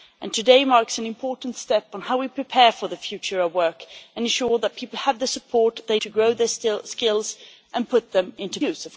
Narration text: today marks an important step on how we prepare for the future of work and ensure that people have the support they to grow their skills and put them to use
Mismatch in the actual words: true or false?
false